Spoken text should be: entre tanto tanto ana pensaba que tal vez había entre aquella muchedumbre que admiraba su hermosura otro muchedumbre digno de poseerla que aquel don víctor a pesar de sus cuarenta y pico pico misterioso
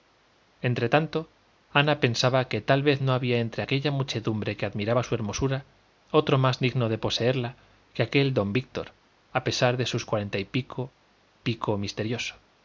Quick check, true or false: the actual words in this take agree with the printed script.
false